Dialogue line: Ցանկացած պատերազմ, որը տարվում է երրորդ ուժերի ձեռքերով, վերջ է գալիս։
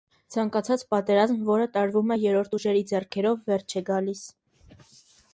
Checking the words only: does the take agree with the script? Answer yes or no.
yes